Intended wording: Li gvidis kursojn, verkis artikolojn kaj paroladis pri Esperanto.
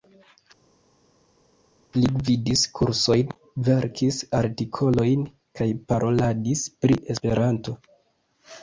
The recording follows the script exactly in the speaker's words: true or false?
true